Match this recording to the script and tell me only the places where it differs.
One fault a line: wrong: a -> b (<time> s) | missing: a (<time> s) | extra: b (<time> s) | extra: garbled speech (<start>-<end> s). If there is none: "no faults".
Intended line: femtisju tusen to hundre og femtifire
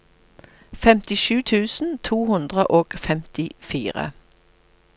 no faults